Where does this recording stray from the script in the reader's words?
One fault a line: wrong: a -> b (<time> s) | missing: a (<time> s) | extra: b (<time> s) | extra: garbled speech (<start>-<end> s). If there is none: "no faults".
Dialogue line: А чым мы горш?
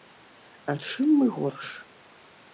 no faults